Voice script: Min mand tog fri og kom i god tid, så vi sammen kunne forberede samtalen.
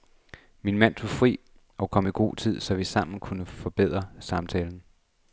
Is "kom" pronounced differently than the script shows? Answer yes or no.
no